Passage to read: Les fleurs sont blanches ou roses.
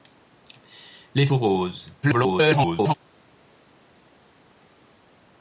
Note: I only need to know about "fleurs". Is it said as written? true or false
false